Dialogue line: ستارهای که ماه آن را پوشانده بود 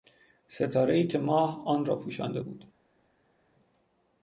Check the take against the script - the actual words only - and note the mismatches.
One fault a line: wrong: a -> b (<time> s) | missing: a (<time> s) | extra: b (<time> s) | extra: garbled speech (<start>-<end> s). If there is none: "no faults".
no faults